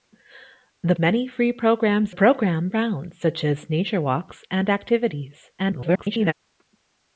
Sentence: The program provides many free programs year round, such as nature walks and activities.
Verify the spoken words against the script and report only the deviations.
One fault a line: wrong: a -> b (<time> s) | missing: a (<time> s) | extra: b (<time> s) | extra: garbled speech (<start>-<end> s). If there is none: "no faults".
missing: program provides (0.9 s)
wrong: year -> program (2.1 s)
extra: garbled speech (5.6-6.3 s)